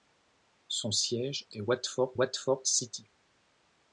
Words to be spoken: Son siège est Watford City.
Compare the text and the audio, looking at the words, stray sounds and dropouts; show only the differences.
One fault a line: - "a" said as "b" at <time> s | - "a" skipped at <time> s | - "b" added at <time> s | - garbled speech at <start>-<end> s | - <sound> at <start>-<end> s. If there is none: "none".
- "Watford" added at 2.1 s